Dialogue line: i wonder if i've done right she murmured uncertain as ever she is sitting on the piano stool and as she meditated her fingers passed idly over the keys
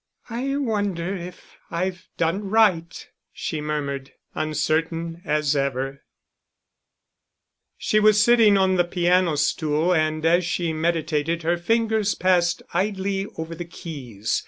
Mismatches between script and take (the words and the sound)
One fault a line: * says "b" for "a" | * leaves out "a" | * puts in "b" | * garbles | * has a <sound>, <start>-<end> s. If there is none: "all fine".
* says "was" for "is"